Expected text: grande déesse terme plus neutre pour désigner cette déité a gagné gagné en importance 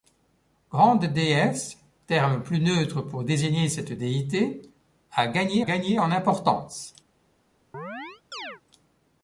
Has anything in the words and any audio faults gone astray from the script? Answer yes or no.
yes